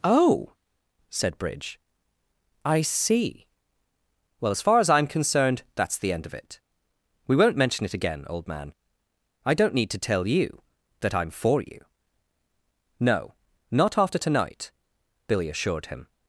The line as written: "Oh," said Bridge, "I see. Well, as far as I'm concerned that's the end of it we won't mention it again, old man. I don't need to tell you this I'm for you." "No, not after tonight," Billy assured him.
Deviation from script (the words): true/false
true